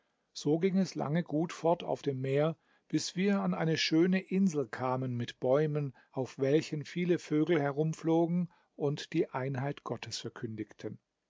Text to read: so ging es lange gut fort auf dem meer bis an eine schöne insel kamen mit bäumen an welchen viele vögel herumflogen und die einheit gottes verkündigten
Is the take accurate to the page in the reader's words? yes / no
no